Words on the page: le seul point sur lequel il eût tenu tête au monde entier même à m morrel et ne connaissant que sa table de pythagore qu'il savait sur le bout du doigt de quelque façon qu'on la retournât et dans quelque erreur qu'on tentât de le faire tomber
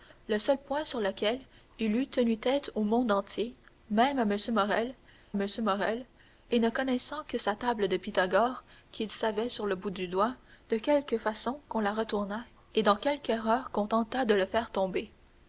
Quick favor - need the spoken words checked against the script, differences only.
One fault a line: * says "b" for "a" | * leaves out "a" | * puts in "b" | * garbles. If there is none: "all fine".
* puts in "m morrel"